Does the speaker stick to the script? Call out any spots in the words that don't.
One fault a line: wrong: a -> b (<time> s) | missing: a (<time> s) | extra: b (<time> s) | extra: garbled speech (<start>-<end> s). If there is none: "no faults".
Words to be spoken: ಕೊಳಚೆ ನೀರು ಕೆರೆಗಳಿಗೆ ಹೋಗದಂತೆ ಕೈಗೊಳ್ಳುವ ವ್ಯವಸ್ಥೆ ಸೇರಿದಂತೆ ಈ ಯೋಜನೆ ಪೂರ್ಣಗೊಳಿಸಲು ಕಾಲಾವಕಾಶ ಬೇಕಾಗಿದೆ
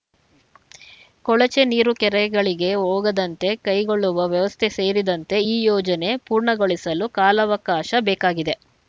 no faults